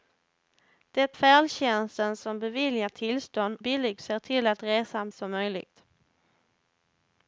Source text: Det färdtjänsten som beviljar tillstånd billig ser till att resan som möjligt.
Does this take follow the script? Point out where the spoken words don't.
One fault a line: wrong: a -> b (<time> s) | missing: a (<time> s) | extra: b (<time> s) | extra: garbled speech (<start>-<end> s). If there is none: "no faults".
no faults